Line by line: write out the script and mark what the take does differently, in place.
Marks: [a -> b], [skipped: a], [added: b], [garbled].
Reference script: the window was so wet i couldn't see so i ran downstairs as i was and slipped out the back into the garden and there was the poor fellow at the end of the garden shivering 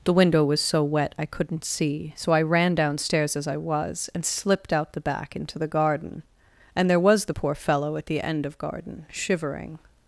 the window was so wet i couldn't see so i ran downstairs as i was and slipped out the back into the garden and there was the poor fellow at the end of [skipped: the] garden shivering